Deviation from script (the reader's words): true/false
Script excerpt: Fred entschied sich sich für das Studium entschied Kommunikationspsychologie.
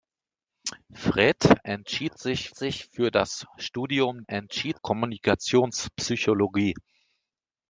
false